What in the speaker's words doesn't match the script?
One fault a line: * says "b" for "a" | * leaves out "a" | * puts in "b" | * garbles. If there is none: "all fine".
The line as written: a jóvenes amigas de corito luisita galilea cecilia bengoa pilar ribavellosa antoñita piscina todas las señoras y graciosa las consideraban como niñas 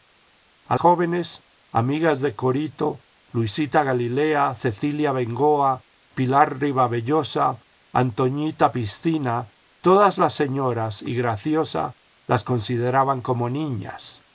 all fine